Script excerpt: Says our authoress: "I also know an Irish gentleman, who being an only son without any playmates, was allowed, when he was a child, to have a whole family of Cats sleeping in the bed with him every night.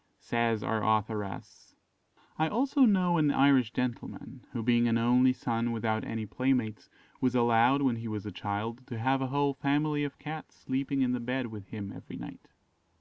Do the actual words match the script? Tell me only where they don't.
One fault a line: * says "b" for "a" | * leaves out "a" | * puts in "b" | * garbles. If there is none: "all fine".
all fine